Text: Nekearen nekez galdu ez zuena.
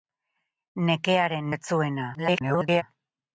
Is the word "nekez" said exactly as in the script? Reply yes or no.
no